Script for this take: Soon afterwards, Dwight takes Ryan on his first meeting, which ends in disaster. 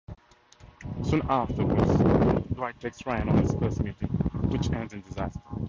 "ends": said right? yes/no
yes